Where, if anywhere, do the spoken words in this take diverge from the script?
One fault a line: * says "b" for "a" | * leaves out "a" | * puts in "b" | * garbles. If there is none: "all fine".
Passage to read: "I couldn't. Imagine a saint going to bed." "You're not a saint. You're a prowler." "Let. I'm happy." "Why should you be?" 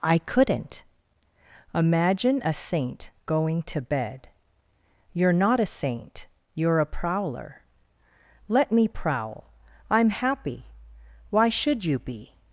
* puts in "me prowl"